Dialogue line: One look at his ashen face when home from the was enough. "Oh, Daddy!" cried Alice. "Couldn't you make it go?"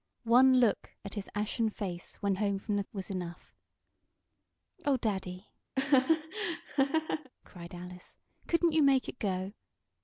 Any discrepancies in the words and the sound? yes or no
yes